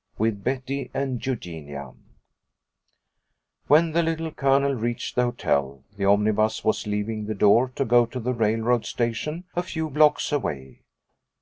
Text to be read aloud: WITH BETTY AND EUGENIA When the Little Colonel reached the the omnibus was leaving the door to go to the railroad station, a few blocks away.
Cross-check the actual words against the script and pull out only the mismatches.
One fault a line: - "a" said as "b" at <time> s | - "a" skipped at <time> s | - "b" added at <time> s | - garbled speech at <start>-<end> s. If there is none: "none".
- "hotel" added at 5.2 s